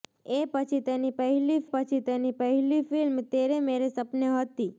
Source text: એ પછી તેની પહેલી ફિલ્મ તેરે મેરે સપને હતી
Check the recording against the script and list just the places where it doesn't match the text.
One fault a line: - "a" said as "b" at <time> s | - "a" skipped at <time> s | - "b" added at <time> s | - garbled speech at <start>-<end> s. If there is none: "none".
- "પછી તેની પહેલી" added at 1.7 s